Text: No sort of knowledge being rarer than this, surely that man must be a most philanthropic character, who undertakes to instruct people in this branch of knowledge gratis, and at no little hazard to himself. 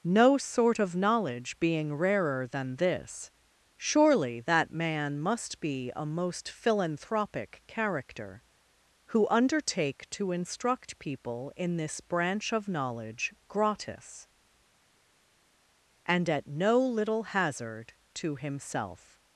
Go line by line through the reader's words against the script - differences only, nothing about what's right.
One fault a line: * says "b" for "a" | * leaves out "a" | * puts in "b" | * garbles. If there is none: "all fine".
* says "undertake" for "undertakes"